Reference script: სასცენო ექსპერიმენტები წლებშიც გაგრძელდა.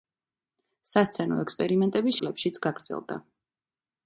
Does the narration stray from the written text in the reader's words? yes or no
no